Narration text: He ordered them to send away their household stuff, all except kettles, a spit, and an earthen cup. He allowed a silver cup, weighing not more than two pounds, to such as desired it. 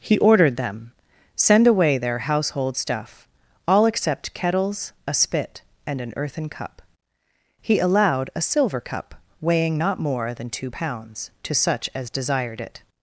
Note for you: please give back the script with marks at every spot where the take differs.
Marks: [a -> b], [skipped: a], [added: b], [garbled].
He ordered them [skipped: to] send away their household stuff, all except kettles, a spit, and an earthen cup. He allowed a silver cup, weighing not more than two pounds, to such as desired it.